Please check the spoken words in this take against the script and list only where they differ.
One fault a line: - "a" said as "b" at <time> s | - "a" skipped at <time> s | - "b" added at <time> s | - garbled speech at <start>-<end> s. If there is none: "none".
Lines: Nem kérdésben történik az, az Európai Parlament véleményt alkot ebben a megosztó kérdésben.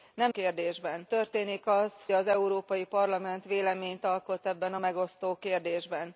none